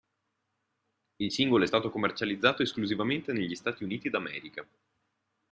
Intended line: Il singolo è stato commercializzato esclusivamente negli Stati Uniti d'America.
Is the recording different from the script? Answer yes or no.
no